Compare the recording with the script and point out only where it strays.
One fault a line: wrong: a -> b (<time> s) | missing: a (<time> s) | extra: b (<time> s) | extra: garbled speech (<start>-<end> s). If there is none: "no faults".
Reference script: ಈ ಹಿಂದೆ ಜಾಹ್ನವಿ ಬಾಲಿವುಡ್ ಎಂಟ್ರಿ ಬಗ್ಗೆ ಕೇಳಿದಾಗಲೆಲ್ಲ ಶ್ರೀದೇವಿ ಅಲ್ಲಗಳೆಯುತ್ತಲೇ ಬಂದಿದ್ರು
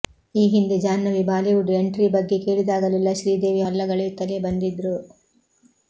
no faults